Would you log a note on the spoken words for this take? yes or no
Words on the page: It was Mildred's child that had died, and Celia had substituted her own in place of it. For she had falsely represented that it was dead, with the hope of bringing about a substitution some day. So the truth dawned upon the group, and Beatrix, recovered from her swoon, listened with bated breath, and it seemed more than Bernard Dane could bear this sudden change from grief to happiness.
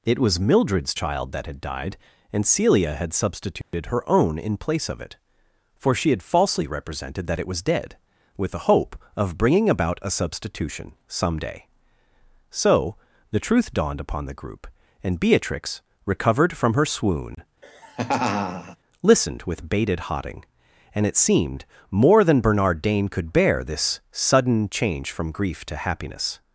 yes